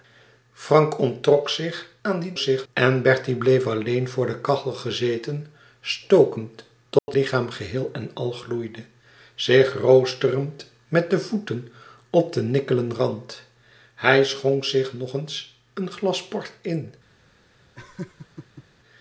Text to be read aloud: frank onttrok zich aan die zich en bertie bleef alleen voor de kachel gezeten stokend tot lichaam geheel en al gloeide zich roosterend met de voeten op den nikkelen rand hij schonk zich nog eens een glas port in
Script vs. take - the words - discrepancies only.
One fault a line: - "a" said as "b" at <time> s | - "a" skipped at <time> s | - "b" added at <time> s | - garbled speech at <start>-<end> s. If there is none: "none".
none